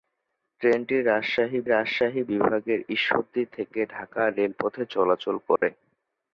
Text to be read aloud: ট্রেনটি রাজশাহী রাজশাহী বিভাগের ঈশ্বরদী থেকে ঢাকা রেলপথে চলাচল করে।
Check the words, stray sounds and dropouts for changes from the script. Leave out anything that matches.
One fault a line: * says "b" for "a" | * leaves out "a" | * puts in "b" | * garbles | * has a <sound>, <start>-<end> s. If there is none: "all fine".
* has a dropout, 5.6-5.6 s